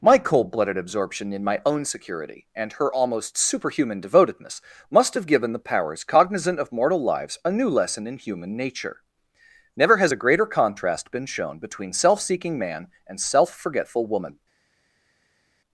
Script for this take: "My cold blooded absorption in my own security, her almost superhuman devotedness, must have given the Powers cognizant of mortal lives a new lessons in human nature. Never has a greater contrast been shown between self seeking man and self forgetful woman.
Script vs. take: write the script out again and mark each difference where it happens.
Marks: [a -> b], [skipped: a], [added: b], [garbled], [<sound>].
"My cold blooded absorption in my own security, [added: and] her almost superhuman devotedness, must have given the Powers cognizant of mortal lives a new [lessons -> lesson] in human nature. Never has a greater contrast been shown between self seeking man and self forgetful woman.